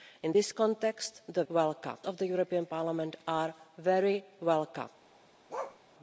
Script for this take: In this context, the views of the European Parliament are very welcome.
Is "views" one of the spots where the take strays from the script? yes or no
yes